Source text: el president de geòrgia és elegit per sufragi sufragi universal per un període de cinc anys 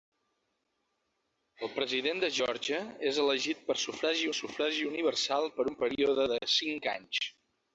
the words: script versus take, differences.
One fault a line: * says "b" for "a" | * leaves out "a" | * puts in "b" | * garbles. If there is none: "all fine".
all fine